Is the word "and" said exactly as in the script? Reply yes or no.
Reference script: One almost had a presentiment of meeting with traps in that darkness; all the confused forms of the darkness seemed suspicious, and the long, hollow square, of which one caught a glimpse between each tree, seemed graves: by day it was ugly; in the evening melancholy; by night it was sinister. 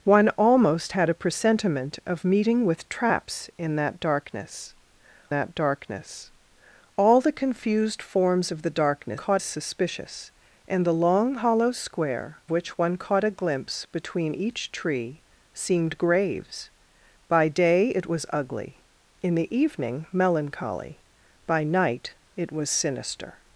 yes